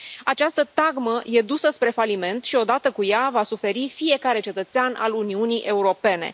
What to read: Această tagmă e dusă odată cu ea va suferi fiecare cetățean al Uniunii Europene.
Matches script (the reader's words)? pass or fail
fail